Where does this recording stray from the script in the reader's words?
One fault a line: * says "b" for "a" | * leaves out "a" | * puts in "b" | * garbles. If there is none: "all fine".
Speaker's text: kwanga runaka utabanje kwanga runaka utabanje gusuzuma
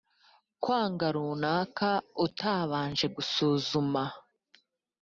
* leaves out "kwanga runaka utabanje"